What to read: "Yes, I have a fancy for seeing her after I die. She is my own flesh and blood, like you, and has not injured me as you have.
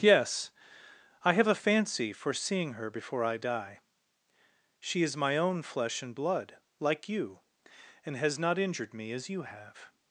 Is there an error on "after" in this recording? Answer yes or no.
yes